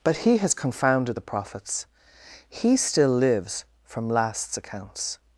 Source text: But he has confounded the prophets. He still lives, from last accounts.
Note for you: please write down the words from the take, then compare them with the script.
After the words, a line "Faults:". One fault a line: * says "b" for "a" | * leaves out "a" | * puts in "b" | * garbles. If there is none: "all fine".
But he has confounded the prophets. He still lives, from lasts accounts.
Faults:
* says "lasts" for "last"